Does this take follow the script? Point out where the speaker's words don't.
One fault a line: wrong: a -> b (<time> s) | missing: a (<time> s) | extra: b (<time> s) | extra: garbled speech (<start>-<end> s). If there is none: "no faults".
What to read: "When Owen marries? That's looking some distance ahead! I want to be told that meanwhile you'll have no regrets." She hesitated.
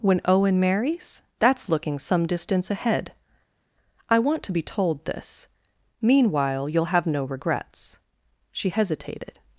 wrong: that -> this (5.0 s)